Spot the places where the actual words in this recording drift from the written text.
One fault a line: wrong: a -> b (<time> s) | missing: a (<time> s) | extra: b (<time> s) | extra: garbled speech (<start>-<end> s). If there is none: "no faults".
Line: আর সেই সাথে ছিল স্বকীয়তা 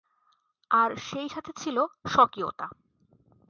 no faults